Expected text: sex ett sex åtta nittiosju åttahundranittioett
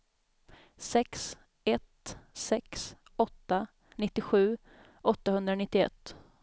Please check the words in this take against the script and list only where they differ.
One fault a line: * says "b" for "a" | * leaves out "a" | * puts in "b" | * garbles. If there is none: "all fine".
all fine